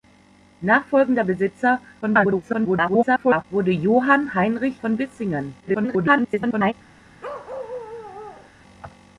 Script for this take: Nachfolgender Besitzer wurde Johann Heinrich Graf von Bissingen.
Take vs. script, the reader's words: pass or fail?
fail